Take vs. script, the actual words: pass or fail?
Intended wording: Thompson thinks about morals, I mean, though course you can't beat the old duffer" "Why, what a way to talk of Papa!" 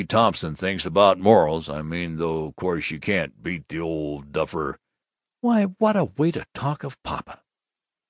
pass